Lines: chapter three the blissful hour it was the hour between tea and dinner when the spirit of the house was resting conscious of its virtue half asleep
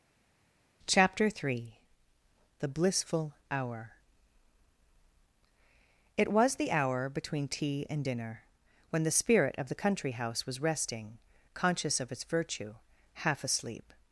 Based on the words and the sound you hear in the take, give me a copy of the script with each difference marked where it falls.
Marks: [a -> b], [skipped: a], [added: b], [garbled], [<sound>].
chapter three the blissful hour it was the hour between tea and dinner when the spirit of the [added: country] house was resting conscious of its virtue half asleep